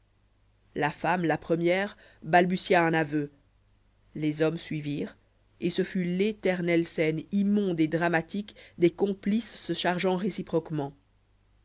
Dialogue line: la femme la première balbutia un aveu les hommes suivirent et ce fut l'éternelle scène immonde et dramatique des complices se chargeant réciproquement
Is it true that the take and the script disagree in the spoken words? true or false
false